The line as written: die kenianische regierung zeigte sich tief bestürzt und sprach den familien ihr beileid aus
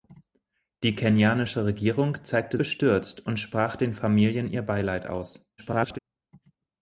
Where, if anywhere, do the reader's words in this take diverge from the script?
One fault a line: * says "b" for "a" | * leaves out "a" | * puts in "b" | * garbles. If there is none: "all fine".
* leaves out "sich tief"
* garbles